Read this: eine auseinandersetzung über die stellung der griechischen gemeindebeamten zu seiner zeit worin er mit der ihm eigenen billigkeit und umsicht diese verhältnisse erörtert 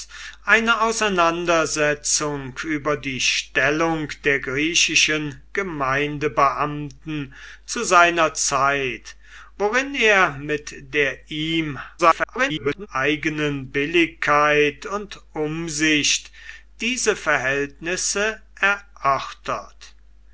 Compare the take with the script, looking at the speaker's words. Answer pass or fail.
fail